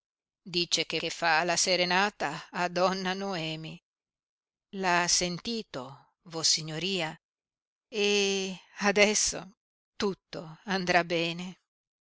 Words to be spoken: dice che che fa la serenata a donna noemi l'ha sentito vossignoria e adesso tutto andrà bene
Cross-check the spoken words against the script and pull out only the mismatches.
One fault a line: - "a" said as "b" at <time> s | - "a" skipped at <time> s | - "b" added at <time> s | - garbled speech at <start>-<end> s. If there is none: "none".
none